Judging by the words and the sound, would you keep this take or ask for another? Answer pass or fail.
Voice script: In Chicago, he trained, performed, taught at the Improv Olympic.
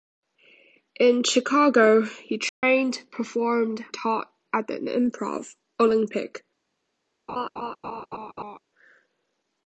fail